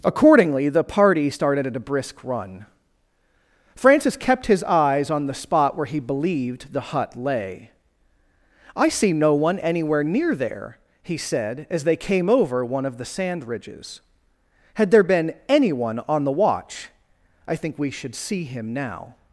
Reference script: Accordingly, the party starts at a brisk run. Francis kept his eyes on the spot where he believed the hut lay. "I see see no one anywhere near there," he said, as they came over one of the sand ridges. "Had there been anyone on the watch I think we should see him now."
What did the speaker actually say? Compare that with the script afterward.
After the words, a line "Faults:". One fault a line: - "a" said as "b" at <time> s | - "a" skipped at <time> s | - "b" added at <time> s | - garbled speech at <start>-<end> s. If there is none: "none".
Accordingly, the party started at a brisk run. Francis kept his eyes on the spot where he believed the hut lay. "I see no one anywhere near there," he said, as they came over one of the sand ridges. "Had there been anyone on the watch I think we should see him now."
Faults:
- "starts" said as "started" at 1.3 s
- "see" skipped at 9.1 s